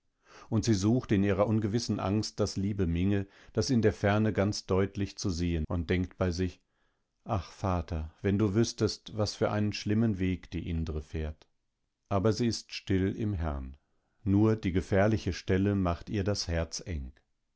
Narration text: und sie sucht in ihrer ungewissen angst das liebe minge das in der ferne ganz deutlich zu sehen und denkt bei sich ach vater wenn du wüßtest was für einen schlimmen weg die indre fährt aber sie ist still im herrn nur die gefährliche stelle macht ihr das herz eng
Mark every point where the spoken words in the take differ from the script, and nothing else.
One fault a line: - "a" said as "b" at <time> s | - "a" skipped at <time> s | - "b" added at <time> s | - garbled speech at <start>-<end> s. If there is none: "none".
none